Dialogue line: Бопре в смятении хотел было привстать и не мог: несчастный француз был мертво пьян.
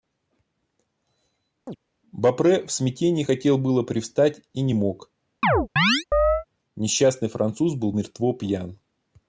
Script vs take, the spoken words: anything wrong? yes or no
no